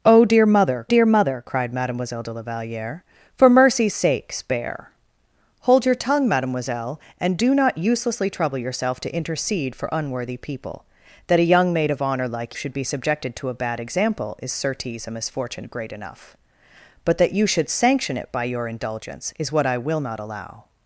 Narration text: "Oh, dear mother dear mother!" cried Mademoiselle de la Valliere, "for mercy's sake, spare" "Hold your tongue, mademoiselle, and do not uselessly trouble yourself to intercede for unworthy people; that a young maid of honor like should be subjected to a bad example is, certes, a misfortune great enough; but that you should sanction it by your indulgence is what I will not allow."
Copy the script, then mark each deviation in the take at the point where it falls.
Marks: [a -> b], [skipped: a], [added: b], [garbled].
"Oh, dear mother dear mother!" cried Mademoiselle de la Valliere, "for mercy's sake, spare" "Hold your tongue, mademoiselle, and do not uselessly trouble yourself to intercede for unworthy people; that a young maid of honor like should be subjected to a bad example is, certes, a misfortune great enough; but that you should sanction it by your indulgence is what I will not allow."